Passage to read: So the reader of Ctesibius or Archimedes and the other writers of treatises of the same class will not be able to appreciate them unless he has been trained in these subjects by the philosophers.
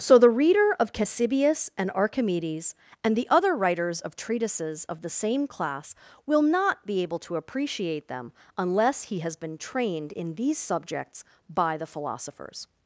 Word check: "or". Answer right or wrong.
wrong